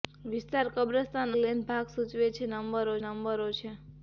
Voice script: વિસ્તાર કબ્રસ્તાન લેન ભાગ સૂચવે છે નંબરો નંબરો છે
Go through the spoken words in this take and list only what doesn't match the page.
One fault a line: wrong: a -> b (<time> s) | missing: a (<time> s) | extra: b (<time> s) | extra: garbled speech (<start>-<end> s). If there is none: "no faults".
no faults